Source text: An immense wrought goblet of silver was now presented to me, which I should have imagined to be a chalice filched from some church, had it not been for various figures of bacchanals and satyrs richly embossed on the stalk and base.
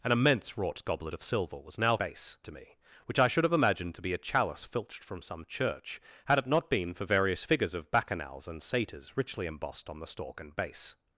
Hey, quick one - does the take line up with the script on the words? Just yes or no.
no